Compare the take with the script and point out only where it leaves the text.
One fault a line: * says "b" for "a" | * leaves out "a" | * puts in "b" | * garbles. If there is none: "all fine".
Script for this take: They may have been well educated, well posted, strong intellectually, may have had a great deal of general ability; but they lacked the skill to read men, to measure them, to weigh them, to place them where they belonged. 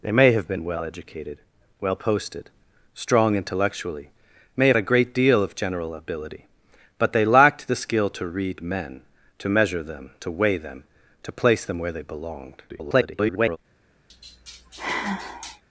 * leaves out "had"
* garbles